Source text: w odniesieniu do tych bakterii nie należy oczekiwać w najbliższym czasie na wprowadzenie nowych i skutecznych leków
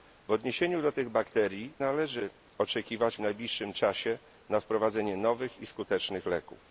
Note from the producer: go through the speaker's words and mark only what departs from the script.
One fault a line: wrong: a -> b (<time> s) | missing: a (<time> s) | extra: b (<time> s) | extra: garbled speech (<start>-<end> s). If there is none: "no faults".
missing: nie (1.7 s)